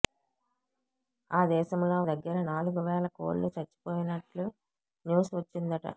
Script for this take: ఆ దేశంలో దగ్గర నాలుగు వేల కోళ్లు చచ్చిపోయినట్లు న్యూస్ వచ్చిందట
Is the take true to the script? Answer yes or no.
yes